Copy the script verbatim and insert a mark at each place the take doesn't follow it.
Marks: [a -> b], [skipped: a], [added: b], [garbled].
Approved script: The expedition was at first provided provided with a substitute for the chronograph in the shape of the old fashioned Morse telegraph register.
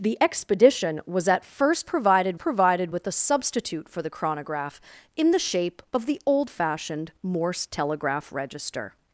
The expedition was at first provided provided with a substitute for the chronograph in the shape of the old fashioned Morse telegraph register.